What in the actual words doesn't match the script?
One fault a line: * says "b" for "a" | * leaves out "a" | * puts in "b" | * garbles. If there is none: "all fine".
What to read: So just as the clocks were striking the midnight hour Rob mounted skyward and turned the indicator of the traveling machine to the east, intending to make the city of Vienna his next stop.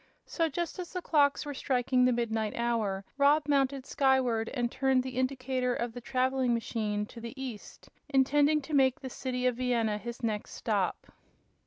all fine